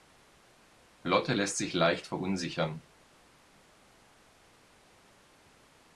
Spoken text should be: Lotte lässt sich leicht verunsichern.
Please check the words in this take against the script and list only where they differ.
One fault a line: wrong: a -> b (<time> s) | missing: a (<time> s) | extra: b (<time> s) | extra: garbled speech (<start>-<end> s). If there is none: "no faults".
no faults